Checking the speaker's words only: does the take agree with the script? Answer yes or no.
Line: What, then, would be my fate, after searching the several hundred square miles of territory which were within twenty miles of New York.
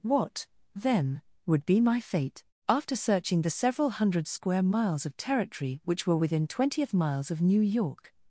no